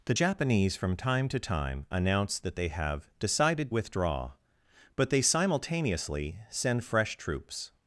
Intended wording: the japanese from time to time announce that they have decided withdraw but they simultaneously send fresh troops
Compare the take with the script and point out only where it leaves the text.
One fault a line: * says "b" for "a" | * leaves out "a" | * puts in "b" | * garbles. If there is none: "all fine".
all fine